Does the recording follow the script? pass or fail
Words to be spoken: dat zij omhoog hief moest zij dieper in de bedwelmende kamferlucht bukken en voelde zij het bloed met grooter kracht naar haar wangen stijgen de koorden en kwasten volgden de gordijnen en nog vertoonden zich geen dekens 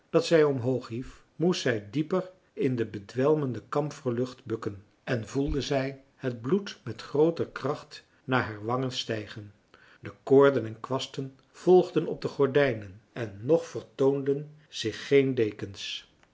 fail